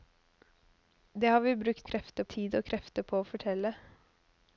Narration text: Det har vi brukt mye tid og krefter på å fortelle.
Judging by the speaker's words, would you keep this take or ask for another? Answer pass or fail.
fail